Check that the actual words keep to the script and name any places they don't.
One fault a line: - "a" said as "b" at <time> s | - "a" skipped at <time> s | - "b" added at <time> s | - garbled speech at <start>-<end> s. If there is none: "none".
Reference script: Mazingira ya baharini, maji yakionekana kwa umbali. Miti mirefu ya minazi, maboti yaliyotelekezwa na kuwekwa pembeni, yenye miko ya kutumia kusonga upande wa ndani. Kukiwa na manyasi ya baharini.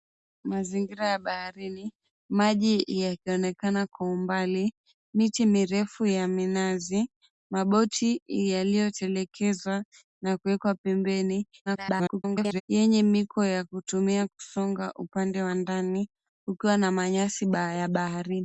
- garbled speech at 11.7-12.6 s